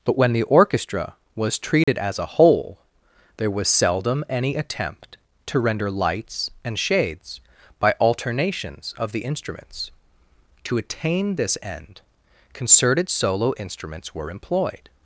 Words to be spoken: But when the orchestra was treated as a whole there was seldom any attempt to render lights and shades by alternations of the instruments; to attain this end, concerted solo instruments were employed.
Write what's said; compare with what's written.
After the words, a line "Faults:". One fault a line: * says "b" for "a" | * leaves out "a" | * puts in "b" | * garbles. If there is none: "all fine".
But when the orchestra was treated as a whole there was seldom any attempt to render lights and shades by alternations of the instruments; to attain this end, concerted solo instruments were employed.
Faults:
all fine